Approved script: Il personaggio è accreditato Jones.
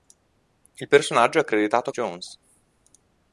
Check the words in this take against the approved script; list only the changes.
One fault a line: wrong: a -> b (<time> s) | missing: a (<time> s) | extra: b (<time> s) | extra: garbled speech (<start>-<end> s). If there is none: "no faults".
no faults